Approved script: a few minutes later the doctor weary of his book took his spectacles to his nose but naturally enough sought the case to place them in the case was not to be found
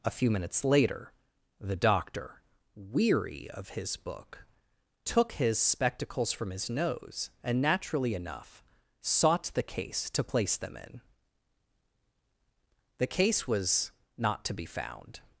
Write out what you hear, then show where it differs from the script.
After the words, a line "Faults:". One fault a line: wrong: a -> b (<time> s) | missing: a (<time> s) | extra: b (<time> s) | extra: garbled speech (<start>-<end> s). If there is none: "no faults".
a few minutes later the doctor weary of his book took his spectacles from his nose and naturally enough sought the case to place them in the case was not to be found
Faults:
wrong: to -> from (6.3 s)
wrong: but -> and (7.4 s)